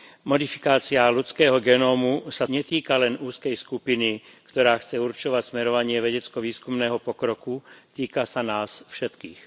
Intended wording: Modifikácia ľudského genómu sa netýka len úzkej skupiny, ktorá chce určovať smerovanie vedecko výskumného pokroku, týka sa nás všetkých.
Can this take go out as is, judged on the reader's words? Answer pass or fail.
pass